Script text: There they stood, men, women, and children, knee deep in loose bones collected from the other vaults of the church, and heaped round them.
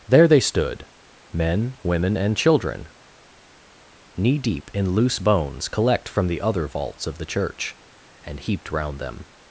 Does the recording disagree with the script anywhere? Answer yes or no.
yes